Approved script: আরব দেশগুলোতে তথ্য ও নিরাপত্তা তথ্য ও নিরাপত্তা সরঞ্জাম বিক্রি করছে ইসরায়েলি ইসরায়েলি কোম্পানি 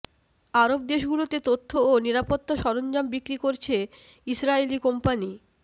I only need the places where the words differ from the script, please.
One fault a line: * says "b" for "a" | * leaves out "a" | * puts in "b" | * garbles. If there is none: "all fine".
* leaves out "তথ্য ও নিরাপত্তা"
* leaves out "ইসরায়েলি"